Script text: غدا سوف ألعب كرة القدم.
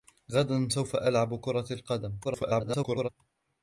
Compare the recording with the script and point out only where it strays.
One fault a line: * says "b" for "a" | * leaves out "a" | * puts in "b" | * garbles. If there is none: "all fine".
* garbles